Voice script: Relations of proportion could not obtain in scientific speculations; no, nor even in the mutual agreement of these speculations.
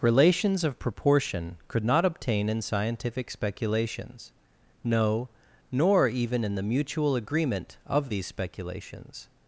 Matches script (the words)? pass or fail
pass